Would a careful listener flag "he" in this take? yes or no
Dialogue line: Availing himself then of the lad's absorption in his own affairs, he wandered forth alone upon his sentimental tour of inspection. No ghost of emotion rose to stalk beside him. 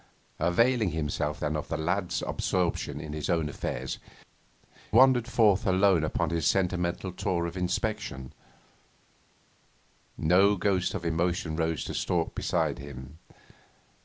yes